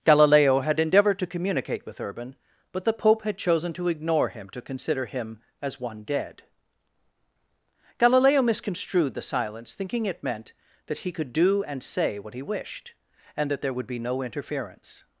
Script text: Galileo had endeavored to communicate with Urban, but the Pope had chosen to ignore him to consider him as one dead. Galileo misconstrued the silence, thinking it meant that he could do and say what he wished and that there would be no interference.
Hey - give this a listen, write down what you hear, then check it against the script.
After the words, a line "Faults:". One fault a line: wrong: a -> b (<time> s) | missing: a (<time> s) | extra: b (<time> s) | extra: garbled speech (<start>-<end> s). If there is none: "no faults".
Galileo had endeavored to communicate with Urban, but the Pope had chosen to ignore him to consider him as one dead. Galileo misconstrued the silence, thinking it meant that he could do and say what he wished and that there would be no interference.
Faults:
no faults